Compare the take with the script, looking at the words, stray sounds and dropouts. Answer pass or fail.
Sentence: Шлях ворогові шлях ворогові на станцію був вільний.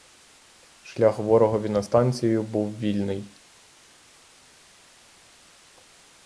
fail